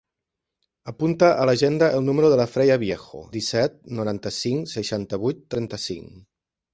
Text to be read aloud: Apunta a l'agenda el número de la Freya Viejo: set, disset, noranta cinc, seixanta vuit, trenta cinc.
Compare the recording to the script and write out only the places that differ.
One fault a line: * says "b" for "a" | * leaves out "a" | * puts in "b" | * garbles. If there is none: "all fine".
* leaves out "set"